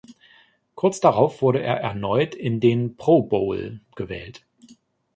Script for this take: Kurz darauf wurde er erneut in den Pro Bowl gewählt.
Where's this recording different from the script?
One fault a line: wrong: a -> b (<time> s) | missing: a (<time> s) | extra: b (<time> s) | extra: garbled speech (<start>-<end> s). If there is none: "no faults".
no faults